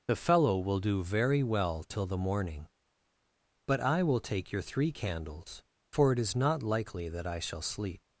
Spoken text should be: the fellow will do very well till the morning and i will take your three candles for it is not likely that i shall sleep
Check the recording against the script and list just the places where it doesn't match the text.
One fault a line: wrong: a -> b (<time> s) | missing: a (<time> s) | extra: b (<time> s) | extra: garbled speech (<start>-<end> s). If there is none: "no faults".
wrong: and -> but (3.7 s)